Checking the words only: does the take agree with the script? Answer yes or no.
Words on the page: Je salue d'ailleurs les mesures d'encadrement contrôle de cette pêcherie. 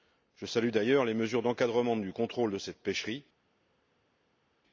no